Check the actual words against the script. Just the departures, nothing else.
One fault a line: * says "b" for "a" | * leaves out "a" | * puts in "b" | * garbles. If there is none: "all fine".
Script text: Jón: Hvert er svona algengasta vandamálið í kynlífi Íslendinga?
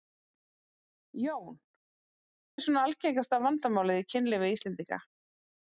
* leaves out "Hvert"